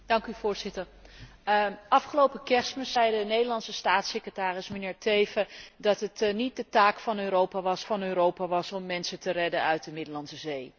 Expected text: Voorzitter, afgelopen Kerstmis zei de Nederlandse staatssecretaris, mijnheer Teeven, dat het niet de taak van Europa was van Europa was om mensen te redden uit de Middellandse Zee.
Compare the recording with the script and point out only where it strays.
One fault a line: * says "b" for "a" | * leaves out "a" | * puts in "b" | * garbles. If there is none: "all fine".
all fine